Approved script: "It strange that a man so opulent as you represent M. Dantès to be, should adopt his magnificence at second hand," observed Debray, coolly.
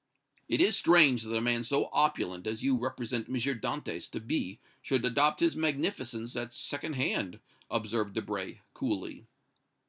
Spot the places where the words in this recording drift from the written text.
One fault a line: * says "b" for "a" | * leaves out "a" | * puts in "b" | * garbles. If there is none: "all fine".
* puts in "is"